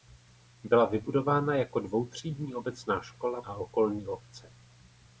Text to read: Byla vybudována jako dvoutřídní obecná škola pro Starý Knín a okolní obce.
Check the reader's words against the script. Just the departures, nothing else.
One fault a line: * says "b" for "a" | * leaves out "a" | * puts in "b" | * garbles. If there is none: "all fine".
* leaves out "pro Starý Knín"